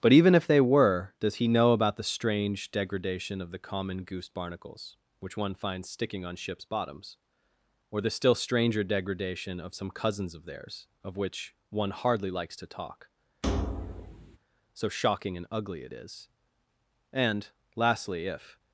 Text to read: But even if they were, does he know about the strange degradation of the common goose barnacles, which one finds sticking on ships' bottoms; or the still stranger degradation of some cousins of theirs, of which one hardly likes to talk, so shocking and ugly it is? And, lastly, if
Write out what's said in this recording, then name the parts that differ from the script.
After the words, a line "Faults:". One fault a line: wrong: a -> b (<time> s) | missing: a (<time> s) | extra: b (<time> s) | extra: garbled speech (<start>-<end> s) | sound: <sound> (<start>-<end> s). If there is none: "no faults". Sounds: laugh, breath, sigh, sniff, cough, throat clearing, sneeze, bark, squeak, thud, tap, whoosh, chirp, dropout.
But even if they were, does he know about the strange degradation of the common goose barnacles, which one finds sticking on ships' bottoms; or the still stranger degradation of some cousins of theirs, of which one hardly likes to talk, so shocking and ugly it is? And, lastly, if
Faults:
sound: thud (13.4-14.4 s)